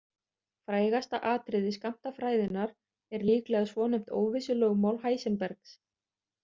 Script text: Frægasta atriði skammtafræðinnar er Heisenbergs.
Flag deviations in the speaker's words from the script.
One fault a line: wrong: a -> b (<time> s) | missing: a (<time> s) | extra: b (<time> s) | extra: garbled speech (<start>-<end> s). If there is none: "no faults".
extra: líklega svonefnt óvissulögmál (3.3 s)